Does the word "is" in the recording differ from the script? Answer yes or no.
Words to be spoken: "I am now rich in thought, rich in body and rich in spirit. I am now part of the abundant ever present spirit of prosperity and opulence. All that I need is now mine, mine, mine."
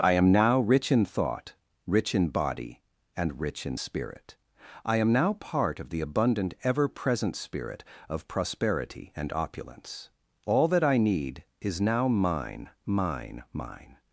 no